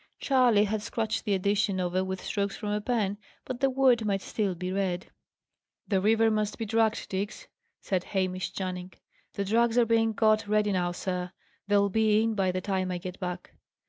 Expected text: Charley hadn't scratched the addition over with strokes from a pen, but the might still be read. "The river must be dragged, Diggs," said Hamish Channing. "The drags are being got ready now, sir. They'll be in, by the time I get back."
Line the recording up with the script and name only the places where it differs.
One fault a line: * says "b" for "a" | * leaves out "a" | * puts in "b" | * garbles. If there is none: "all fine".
* says "had" for "hadn't"
* puts in "word"